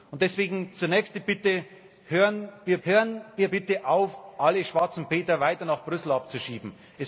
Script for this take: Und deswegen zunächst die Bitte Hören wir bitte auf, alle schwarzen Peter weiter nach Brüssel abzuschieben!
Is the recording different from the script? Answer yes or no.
yes